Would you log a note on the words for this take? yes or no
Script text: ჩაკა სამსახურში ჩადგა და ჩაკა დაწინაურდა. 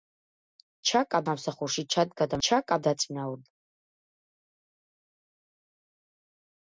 no